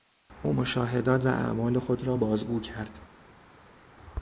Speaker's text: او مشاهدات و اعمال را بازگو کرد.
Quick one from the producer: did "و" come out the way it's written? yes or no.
yes